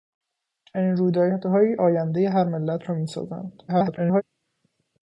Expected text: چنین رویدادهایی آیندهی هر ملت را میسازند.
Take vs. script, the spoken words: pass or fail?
fail